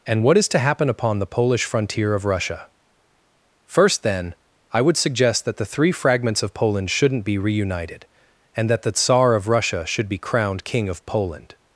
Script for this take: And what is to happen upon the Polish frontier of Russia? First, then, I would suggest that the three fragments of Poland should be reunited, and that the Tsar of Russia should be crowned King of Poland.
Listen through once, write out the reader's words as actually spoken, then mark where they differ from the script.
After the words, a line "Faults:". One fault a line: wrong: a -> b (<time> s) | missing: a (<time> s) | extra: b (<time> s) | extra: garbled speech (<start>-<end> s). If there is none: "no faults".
And what is to happen upon the Polish frontier of Russia? First, then, I would suggest that the three fragments of Poland shouldn't be reunited, and that the Tsar of Russia should be crowned King of Poland.
Faults:
wrong: should -> shouldn't (6.9 s)